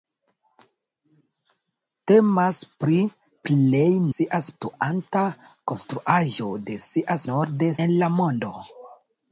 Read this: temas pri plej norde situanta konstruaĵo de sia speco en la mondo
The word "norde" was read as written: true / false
false